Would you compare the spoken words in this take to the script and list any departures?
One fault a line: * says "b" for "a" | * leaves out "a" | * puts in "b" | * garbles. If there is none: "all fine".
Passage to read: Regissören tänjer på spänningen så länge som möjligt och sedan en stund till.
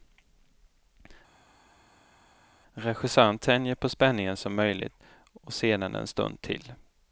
* leaves out "så länge"